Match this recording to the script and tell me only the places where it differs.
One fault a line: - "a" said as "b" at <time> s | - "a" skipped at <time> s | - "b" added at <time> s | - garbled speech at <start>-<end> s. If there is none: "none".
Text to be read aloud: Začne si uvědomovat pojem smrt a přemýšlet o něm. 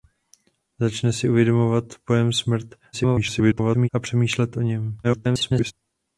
- garbled speech at 2.9-3.9 s
- garbled speech at 5.0-5.7 s